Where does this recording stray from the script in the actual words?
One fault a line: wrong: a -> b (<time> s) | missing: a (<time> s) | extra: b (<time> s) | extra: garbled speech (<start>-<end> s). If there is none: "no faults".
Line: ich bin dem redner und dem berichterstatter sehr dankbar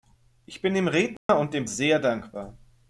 missing: berichterstatter (1.7 s)